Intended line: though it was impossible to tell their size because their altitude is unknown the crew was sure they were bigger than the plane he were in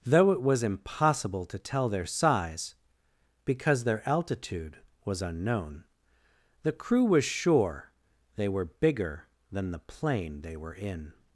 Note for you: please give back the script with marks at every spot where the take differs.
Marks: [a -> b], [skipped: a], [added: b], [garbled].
though it was impossible to tell their size because their altitude [is -> was] unknown the crew was sure they were bigger than the plane [he -> they] were in